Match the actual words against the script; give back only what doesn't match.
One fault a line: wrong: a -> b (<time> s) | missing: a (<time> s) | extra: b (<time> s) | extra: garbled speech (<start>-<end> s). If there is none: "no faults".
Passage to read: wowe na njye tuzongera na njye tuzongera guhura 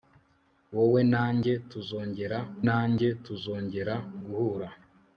no faults